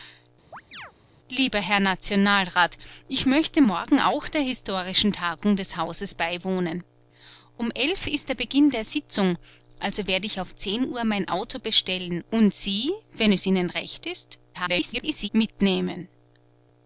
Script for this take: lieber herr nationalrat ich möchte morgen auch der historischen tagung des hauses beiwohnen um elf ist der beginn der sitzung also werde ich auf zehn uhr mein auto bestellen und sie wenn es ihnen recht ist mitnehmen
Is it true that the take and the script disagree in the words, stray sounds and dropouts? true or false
true